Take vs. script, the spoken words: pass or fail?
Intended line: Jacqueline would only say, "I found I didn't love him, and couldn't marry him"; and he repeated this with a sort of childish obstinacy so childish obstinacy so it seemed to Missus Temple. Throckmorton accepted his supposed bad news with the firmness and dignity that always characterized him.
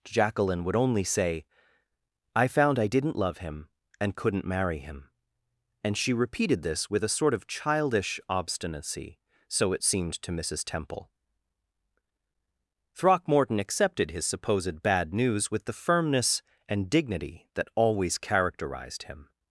fail